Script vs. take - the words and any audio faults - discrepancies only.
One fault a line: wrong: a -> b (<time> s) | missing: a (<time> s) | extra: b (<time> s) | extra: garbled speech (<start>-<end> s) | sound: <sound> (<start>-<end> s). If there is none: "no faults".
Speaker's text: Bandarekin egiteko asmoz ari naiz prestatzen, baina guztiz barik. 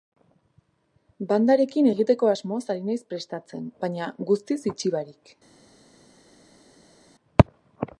extra: itxi (4.7 s)